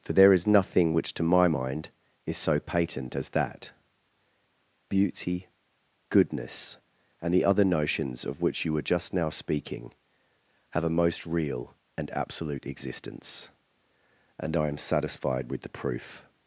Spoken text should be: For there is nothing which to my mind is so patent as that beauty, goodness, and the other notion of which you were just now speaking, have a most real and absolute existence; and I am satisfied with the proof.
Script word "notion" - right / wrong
wrong